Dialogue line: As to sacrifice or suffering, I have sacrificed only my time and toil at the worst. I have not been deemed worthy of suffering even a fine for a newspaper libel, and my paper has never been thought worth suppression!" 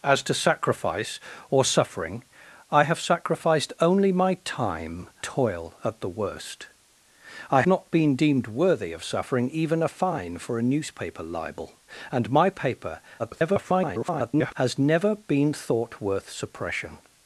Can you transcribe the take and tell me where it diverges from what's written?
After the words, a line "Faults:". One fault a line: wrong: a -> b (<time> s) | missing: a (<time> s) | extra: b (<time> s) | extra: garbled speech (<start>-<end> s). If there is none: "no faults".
As to sacrifice or suffering, I have sacrificed only my time toil at the worst. I not been deemed worthy of suffering even a fine for a newspaper libel, and my paper [garbled] has never been thought worth suppression!"
Faults:
missing: and (5.1 s)
missing: have (7.6 s)
extra: garbled speech (13.2-14.5 s)